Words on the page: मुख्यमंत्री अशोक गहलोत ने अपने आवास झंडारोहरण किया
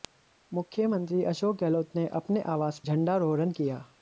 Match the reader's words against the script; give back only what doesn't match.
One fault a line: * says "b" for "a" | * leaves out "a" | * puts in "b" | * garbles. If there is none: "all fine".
all fine